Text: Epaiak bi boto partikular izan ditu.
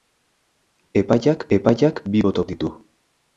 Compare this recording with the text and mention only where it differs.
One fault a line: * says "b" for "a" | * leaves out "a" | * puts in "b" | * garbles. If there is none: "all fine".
* puts in "epaiak"
* leaves out "partikular izan"